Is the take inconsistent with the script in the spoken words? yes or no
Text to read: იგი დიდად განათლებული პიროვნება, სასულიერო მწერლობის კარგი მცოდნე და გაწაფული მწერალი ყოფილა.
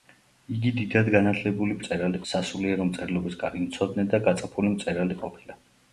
yes